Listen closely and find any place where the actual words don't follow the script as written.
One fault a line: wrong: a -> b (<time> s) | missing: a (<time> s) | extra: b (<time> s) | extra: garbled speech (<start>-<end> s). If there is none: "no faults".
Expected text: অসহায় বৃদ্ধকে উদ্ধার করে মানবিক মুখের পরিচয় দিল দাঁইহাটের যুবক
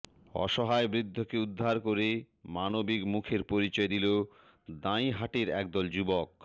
extra: একদল (5.5 s)